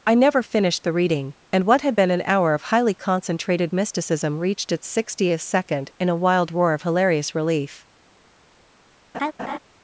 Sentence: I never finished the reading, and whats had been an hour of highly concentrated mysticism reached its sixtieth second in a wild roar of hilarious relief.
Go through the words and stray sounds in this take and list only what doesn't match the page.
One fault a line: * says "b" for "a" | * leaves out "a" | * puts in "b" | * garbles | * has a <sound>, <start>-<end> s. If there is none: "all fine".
* says "what" for "whats"
* has a laugh, 9.1-9.6 s